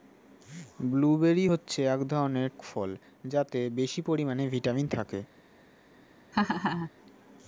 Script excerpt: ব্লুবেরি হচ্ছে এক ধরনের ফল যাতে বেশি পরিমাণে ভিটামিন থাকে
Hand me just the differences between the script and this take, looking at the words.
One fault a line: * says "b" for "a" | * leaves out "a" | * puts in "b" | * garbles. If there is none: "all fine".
all fine